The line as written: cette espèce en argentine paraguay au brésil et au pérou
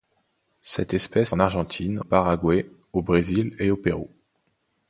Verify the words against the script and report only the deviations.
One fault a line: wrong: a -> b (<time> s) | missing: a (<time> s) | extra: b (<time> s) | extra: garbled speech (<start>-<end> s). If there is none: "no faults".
no faults